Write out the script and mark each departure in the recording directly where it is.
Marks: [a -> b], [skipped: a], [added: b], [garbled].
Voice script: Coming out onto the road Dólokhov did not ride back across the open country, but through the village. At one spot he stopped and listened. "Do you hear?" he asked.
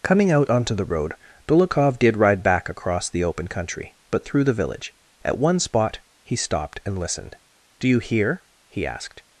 Coming out onto the road Dólokhov did [skipped: not] ride back across the open country, but through the village. At one spot he stopped and listened. "Do you hear?" he asked.